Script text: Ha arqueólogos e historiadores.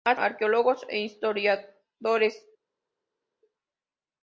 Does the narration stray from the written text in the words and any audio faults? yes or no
no